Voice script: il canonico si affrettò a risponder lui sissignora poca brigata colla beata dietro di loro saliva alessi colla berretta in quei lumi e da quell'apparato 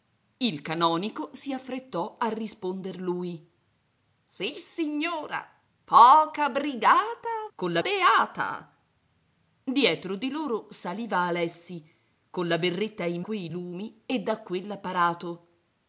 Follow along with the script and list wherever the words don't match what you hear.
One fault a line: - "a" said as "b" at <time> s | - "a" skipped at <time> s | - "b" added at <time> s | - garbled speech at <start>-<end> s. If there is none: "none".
none